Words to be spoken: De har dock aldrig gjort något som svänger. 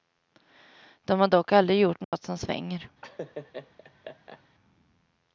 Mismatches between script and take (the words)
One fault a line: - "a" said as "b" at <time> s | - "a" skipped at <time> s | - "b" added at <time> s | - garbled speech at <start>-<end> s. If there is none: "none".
none